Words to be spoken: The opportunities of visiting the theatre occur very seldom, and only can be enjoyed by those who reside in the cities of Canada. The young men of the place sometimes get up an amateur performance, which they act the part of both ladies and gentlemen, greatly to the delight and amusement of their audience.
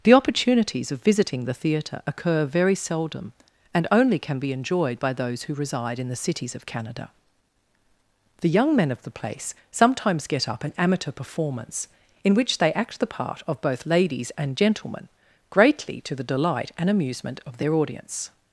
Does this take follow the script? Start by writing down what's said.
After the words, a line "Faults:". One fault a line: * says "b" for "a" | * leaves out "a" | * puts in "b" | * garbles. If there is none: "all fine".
The opportunities of visiting the theatre occur very seldom, and only can be enjoyed by those who reside in the cities of Canada. The young men of the place sometimes get up an amateur performance, in which they act the part of both ladies and gentlemen, greatly to the delight and amusement of their audience.
Faults:
* puts in "in"